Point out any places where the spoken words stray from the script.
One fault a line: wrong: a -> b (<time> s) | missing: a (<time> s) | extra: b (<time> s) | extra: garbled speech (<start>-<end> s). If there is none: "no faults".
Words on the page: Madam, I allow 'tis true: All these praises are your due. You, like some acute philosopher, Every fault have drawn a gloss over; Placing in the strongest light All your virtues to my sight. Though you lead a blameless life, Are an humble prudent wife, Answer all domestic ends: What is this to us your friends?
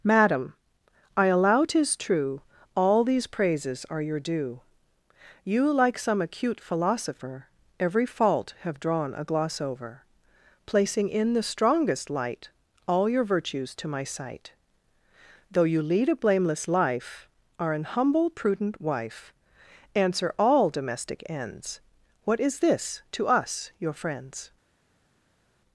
no faults